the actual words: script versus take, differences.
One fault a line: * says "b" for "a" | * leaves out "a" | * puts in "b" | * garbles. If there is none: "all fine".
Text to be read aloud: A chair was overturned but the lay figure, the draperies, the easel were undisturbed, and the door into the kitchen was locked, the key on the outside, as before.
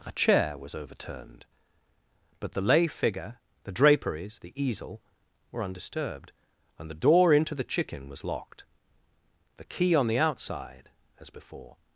* says "chicken" for "kitchen"